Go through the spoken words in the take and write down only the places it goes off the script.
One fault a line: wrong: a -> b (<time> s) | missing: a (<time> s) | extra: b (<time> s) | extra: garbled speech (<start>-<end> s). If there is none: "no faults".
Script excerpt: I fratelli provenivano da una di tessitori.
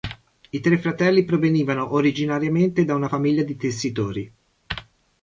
extra: tre (0.6 s)
extra: originariamente (1.9 s)
extra: famiglia (3.0 s)